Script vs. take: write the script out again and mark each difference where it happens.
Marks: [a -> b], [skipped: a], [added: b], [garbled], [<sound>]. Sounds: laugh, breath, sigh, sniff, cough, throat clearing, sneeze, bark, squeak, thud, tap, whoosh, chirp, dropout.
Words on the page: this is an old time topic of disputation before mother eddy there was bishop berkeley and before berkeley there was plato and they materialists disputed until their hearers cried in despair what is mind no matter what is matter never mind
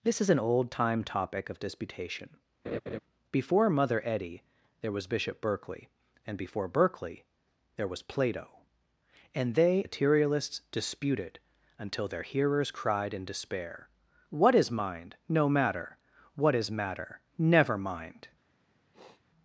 this is an old time topic of disputation [laugh] before mother eddy there was bishop berkeley and before berkeley there was plato and they materialists disputed until their hearers cried in despair what is mind no matter what is matter never mind [sniff]